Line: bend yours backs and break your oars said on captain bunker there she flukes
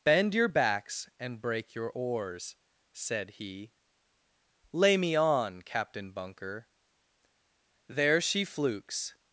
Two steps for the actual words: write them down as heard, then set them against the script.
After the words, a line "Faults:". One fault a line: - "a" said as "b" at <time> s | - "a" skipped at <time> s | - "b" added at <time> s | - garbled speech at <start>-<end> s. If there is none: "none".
bend your backs and break your oars said he lay me on captain bunker there she flukes
Faults:
- "yours" said as "your" at 0.3 s
- "he lay me" added at 3.3 s